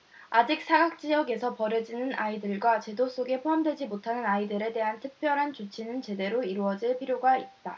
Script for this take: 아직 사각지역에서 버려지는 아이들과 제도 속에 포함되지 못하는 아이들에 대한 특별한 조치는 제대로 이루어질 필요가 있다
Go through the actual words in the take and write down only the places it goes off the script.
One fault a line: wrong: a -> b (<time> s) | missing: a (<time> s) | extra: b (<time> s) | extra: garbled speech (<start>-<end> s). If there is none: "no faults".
no faults